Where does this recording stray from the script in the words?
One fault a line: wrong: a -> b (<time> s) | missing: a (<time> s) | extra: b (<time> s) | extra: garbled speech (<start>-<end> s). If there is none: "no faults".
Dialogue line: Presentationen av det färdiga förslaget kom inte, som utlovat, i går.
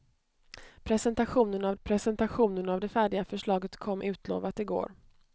extra: presentationen av (1.8 s)
missing: inte som (4.0 s)